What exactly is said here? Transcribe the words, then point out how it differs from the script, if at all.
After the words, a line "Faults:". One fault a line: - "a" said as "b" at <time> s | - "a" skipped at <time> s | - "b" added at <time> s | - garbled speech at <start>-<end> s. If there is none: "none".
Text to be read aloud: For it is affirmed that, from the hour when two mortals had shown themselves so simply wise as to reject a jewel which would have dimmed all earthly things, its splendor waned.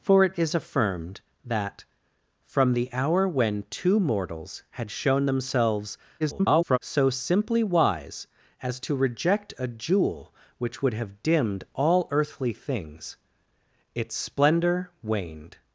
For it is affirmed that, from the hour when two mortals had shown themselves [garbled] so simply wise as to reject a jewel which would have dimmed all earthly things, its splendor waned.
Faults:
- garbled speech at 6.2-6.8 s